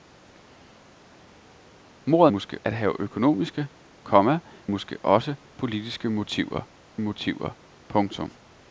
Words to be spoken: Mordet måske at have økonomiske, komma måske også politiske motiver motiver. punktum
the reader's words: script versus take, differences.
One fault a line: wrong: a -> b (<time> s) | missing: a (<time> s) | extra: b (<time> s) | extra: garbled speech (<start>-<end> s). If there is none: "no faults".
no faults